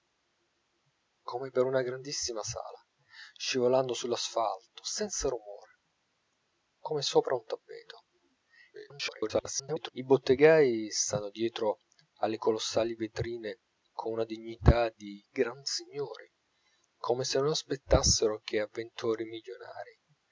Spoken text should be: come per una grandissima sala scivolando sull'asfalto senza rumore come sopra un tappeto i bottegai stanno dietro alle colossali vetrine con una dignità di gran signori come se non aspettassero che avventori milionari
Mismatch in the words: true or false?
true